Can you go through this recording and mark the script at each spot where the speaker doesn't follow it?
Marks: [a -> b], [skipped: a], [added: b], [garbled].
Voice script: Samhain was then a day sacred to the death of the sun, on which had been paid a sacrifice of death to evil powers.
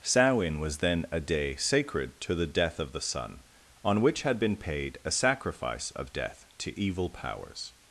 Samhain was then a day sacred to the death of the sun, on which had been paid a sacrifice of death to evil powers.